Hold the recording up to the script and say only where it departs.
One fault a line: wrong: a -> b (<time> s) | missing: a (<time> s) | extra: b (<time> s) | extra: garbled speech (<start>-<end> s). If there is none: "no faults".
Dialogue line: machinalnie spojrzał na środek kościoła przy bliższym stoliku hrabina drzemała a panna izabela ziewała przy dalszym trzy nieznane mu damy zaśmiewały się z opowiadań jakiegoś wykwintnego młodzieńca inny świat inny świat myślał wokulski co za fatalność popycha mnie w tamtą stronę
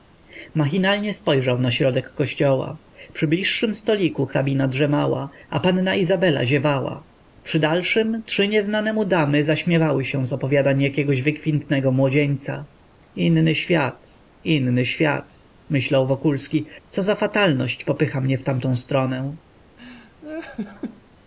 no faults